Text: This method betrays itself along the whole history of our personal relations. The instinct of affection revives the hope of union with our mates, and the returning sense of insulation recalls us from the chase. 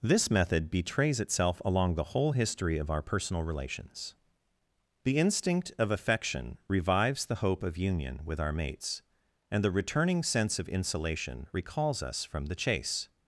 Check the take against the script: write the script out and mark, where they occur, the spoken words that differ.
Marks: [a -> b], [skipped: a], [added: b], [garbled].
This method betrays itself along the whole history of our personal relations. The instinct of affection revives the hope of union with our mates, and the returning sense of insulation recalls us from the chase.